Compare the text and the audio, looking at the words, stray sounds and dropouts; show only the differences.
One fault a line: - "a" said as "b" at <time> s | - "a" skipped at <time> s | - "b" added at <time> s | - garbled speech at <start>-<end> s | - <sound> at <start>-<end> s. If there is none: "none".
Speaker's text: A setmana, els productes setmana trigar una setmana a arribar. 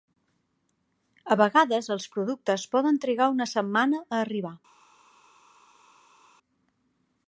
- "setmana" said as "vegades" at 1.4 s
- "setmana" said as "poden" at 2.7 s